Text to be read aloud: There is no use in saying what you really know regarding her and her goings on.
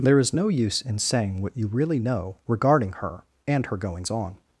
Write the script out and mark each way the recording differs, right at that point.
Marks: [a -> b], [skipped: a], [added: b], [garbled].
There is no use in saying what you really know regarding her and her goings on.